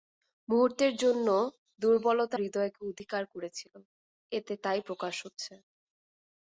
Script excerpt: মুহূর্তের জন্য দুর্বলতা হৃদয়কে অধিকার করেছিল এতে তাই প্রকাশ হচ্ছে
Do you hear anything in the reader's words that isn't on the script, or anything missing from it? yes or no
no